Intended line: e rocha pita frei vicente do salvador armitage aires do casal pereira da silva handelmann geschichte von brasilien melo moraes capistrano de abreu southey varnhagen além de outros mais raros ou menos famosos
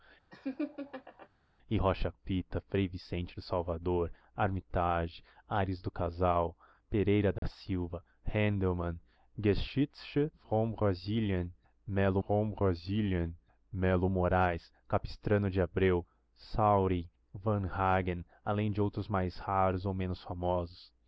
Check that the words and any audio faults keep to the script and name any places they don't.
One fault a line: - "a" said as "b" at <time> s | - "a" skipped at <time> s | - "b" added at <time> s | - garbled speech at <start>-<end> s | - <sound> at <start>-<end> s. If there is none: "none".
- laugh at 0.3-1.3 s
- dropout at 7.4-7.4 s
- "von brasilien melo" added at 12.3 s